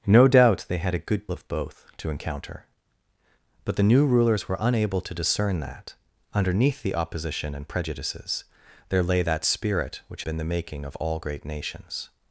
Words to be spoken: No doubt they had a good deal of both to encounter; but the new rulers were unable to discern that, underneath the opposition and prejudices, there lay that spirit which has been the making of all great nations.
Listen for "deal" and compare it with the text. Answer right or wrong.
wrong